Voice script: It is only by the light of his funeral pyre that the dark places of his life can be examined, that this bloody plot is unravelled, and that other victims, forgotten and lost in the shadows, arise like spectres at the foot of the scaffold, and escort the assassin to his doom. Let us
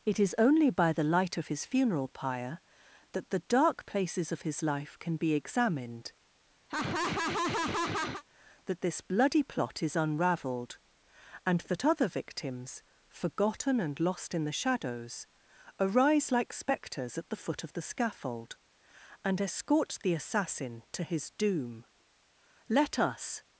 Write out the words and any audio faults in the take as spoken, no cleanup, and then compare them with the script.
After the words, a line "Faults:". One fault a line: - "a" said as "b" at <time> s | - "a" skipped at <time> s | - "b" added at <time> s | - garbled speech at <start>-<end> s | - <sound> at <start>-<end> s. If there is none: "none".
It is only by the light of his funeral pyre that the dark places of his life can be examined, that this bloody plot is unravelled, and that other victims, forgotten and lost in the shadows, arise like spectres at the foot of the scaffold, and escort the assassin to his doom. Let us
Faults:
- laugh at 6.7-8.2 s